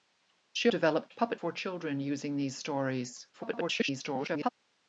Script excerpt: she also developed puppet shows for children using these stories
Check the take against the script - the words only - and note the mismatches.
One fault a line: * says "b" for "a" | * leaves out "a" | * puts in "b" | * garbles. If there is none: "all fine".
* leaves out "also"
* leaves out "shows"
* garbles